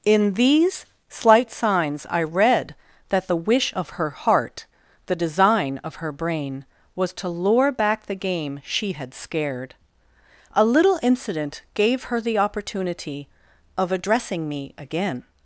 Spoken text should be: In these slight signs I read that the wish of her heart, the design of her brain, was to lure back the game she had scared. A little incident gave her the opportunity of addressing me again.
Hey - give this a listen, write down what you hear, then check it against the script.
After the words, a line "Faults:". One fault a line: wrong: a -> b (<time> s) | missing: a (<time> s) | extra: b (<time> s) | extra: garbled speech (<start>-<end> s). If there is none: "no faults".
In these slight signs I read that the wish of her heart, the design of her brain, was to lure back the game she had scared. A little incident gave her the opportunity of addressing me again.
Faults:
no faults